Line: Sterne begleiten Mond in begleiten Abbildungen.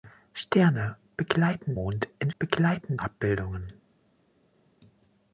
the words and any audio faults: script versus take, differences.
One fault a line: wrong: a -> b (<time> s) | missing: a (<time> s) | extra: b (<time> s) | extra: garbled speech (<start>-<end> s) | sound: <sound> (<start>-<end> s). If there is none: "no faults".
no faults